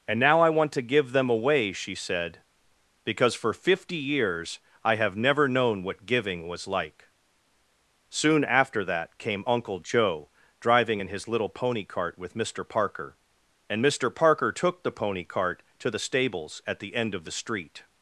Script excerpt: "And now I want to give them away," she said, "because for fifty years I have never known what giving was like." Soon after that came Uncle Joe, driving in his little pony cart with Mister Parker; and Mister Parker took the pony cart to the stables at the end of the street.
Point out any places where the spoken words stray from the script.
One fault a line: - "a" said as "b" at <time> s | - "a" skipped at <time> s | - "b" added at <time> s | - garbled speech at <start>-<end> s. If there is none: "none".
none